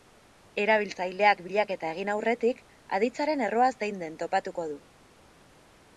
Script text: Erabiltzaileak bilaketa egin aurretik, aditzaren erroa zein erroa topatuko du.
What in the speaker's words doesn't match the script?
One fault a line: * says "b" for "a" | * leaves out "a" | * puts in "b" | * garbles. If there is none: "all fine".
* says "den" for "erroa"